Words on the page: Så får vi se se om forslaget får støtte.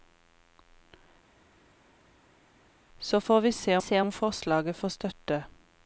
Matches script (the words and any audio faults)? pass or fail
pass